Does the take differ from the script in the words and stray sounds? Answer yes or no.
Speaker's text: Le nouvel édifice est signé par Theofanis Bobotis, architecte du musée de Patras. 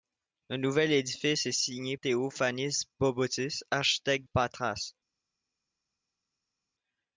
yes